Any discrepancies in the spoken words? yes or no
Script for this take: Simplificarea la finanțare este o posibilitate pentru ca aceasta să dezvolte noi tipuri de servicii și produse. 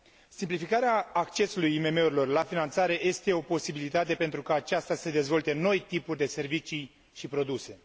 yes